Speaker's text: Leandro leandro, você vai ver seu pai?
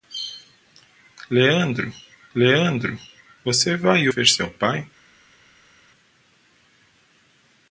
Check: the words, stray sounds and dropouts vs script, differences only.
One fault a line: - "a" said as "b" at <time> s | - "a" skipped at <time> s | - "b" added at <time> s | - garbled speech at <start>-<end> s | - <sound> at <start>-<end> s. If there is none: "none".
none